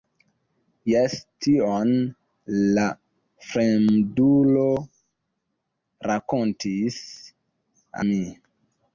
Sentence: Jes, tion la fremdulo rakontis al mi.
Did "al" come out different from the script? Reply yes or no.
yes